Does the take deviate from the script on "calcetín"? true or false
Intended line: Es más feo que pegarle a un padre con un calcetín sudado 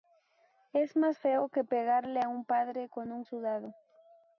true